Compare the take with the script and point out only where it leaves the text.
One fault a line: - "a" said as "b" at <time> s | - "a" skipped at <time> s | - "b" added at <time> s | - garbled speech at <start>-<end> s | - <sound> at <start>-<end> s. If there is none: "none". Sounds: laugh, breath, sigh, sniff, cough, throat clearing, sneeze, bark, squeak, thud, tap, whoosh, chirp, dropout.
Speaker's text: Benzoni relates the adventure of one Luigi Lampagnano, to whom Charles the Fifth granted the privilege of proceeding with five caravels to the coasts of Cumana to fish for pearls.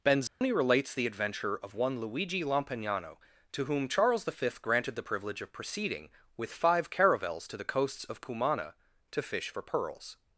- dropout at 0.3-0.4 s